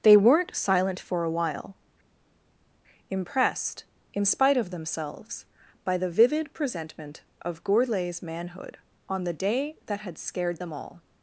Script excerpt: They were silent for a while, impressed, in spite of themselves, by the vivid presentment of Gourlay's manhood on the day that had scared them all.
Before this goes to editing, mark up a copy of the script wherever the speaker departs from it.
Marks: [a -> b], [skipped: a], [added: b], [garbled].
They [were -> weren't] silent for a while, impressed, in spite of themselves, by the vivid presentment of Gourlay's manhood on the day that had scared them all.